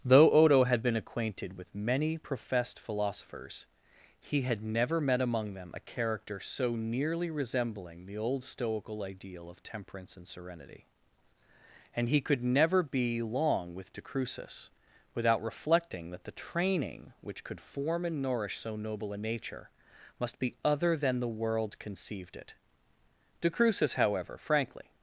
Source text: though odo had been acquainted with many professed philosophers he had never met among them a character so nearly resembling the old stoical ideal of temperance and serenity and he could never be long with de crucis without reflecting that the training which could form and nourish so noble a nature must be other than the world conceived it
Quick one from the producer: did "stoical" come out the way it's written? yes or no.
yes